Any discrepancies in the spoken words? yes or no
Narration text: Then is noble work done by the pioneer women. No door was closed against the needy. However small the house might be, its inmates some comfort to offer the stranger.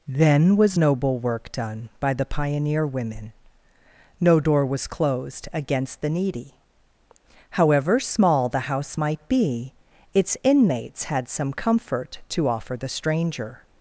yes